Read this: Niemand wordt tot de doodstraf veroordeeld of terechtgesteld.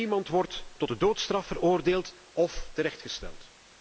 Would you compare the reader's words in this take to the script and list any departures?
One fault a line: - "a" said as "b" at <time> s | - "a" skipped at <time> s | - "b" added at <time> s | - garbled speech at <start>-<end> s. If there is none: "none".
none